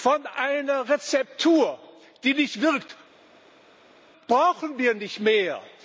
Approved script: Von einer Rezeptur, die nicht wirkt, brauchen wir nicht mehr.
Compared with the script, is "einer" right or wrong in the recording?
right